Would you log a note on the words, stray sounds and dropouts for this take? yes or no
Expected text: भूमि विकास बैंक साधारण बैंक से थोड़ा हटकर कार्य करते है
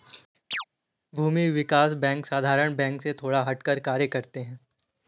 yes